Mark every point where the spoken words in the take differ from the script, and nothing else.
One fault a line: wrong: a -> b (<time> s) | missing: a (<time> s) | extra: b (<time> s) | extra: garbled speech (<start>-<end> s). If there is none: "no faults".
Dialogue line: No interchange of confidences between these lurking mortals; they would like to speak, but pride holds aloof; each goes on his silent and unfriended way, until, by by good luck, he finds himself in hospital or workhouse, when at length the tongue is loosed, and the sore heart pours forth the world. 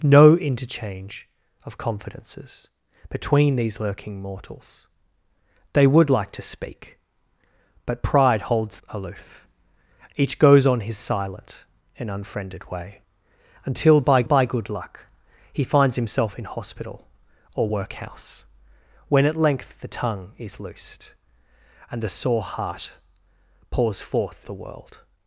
no faults